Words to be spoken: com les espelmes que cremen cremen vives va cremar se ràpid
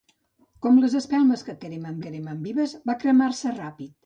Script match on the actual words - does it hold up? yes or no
yes